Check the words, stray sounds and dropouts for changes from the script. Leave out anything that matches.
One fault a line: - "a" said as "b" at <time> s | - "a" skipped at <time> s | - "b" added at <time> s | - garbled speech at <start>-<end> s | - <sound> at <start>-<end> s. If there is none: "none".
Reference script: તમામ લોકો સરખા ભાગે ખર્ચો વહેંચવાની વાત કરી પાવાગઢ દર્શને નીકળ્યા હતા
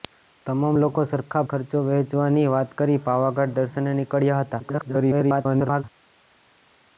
- "ભાગે" skipped at 1.4 s
- garbled speech at 4.6-5.8 s